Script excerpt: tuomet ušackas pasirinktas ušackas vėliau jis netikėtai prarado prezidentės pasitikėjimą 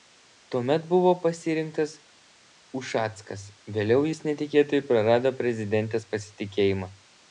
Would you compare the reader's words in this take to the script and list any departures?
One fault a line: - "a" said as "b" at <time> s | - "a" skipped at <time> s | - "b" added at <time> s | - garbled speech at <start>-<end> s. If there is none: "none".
- "ušackas" said as "buvo" at 0.9 s